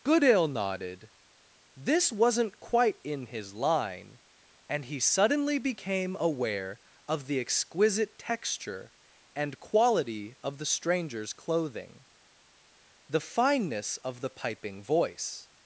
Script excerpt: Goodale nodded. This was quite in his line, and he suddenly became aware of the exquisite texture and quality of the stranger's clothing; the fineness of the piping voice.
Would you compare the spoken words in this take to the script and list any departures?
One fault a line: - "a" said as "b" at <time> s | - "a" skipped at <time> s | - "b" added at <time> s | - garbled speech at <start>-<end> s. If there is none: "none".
- "was" said as "wasn't" at 2.1 s